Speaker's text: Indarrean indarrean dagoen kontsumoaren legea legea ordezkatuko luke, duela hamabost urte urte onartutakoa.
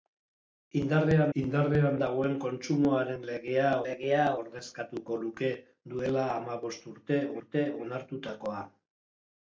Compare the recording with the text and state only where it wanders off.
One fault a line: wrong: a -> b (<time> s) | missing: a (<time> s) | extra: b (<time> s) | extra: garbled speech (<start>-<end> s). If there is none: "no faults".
no faults